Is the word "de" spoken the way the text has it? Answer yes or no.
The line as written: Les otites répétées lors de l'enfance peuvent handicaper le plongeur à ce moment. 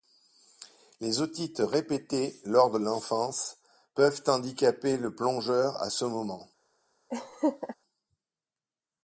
yes